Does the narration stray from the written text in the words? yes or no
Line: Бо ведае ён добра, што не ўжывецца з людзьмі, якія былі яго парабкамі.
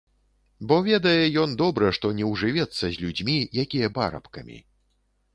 yes